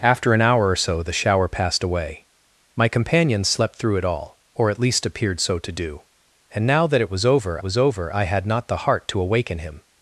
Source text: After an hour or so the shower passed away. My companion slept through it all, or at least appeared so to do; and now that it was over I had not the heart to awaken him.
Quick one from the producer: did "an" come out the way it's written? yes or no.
yes